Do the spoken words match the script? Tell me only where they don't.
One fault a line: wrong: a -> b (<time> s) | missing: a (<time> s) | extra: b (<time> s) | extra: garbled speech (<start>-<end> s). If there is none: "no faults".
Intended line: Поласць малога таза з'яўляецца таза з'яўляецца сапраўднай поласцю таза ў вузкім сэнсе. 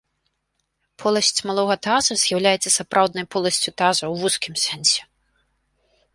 missing: таза з'яўляецца (2.7 s)